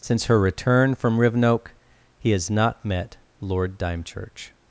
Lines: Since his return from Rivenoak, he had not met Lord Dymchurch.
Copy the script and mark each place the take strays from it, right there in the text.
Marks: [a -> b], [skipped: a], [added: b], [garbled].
Since [his -> her] return from Rivenoak, he [had -> has] not met Lord Dymchurch.